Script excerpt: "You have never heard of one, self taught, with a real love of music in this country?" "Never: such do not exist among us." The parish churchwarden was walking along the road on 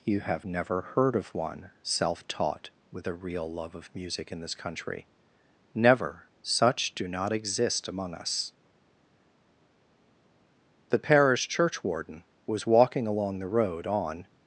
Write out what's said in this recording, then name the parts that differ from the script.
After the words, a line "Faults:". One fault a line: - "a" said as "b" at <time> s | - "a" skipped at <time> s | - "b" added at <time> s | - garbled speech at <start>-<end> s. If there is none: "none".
"You have never heard of one, self taught, with a real love of music in this country?" "Never: such do not exist among us." The parish churchwarden was walking along the road on
Faults:
none